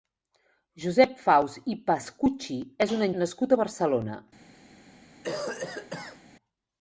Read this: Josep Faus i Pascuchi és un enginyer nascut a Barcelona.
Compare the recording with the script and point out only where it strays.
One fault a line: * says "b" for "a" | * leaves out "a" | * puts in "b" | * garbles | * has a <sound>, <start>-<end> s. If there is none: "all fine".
* leaves out "enginyer"
* has a cough, 5.2-6.2 s